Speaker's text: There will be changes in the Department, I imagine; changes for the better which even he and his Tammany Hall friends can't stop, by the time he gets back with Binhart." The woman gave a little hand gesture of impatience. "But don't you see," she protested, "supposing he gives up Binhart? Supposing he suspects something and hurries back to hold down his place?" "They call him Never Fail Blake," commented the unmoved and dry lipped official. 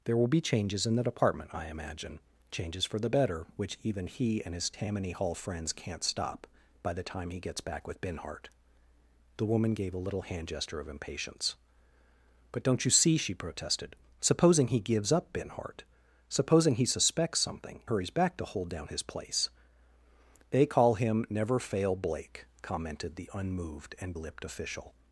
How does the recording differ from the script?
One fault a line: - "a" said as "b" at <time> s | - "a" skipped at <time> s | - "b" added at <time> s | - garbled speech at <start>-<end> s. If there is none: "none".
- "and" skipped at 17.8 s
- "dry" skipped at 24.1 s